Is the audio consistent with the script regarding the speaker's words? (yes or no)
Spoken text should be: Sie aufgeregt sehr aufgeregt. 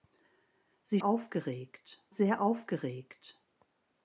yes